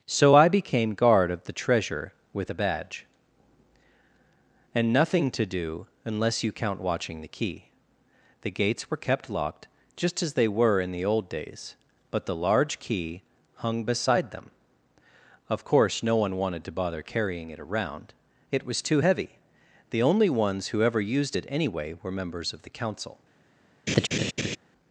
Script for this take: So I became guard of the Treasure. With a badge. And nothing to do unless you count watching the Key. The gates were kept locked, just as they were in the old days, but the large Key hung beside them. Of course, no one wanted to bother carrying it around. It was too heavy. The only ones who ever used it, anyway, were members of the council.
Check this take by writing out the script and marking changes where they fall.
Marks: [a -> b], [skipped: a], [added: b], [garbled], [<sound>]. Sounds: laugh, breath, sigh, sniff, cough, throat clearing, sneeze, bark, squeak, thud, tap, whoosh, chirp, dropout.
So I became guard of the Treasure. With a badge. And nothing to do unless you count watching the Key. The gates were kept locked, just as they were in the old days, but the large Key hung beside them. Of course, no one wanted to bother carrying it around. It was too heavy. The only ones who ever used it, anyway, were members of the council. [laugh]